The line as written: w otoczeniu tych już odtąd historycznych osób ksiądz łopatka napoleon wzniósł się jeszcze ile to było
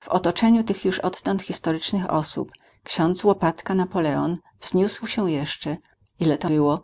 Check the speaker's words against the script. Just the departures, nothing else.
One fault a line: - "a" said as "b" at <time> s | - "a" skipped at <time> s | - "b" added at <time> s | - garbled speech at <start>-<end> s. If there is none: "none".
none